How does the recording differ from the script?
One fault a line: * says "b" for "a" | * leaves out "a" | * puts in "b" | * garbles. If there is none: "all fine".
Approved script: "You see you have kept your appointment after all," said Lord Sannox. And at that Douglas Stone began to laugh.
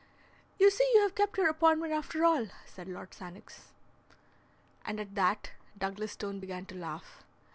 all fine